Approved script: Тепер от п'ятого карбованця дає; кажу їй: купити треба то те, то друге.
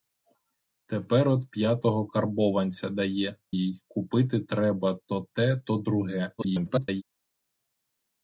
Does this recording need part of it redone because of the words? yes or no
yes